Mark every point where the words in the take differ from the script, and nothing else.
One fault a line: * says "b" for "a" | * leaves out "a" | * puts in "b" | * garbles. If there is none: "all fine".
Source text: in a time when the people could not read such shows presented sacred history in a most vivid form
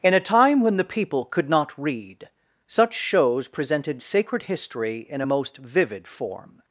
all fine